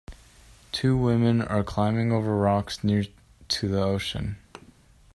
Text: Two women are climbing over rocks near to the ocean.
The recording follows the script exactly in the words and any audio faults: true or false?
false